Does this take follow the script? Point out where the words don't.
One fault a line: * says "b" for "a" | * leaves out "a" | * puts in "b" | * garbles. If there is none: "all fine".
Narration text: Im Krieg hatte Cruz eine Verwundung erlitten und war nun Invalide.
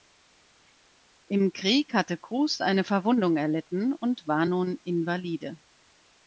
all fine